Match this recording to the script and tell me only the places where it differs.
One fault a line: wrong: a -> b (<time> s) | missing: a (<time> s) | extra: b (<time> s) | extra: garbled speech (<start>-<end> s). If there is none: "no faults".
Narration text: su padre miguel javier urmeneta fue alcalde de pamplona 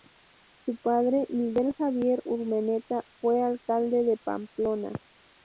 no faults